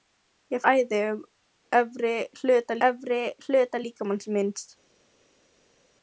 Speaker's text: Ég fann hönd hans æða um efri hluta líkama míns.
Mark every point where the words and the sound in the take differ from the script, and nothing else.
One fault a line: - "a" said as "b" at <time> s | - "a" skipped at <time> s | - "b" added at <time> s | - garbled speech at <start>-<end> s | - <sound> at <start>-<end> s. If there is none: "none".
- "fann hönd hans æða um" said as "æða um efri hluta" at 0.7 s